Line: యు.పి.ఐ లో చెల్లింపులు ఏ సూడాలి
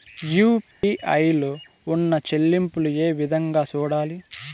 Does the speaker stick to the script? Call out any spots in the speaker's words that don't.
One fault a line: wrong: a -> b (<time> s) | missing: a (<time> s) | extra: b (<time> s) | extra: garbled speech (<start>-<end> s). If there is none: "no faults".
extra: ఉన్న (1.9 s)
extra: విధంగా (3.1 s)